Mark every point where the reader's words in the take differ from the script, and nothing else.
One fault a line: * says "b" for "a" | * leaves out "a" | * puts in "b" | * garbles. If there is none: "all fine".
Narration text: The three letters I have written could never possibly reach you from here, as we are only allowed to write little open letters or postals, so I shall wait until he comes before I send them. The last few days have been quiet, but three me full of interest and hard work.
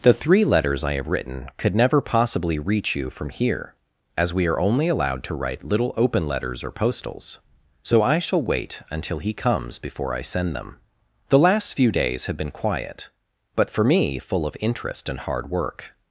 * says "for" for "three"